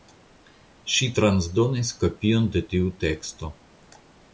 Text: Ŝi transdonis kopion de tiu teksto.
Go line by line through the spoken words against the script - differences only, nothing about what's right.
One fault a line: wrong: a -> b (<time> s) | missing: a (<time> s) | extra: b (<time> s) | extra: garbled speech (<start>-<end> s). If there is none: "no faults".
no faults